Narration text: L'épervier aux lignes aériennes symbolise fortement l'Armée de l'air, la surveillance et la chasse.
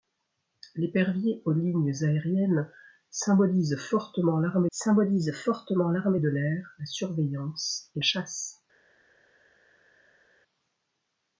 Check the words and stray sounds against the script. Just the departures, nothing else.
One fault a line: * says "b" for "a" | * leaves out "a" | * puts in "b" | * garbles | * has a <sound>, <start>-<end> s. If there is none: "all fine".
* puts in "symbolise fortement l'Armée"
* leaves out "la"